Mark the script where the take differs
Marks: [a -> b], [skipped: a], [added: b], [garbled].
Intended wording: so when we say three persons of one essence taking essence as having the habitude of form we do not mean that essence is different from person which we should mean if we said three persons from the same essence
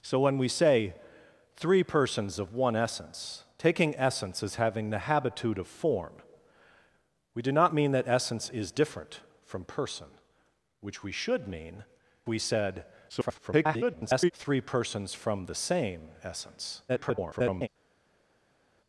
so when we say three persons of one essence taking essence as having the habitude of form we do not mean that essence is different from person which we should mean [skipped: if] we said [garbled] three persons from the same essence [garbled]